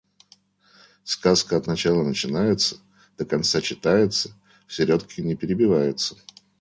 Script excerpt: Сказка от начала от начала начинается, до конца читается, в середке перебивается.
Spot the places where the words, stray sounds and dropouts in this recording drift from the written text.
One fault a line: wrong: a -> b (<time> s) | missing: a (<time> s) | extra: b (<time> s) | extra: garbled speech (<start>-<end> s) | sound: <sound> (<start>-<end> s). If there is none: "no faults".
missing: от начала (2.0 s)
extra: не (5.2 s)